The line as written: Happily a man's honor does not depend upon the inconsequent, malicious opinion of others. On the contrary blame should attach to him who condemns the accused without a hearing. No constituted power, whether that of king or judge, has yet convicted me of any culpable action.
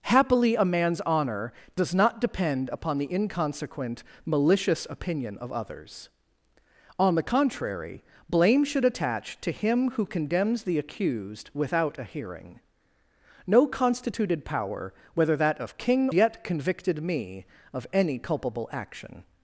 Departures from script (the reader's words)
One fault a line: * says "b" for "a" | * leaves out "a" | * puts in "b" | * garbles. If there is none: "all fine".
* leaves out "or judge has"